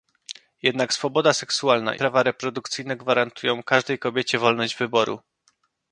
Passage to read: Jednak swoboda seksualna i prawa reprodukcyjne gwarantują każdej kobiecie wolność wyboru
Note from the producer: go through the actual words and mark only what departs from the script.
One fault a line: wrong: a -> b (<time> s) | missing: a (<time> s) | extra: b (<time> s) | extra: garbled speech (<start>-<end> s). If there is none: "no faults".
missing: i (1.9 s)